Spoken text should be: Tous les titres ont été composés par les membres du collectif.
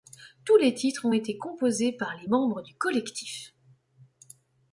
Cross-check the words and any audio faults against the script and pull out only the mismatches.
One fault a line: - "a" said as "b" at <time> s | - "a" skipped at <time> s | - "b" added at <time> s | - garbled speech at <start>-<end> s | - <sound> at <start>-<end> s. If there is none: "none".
none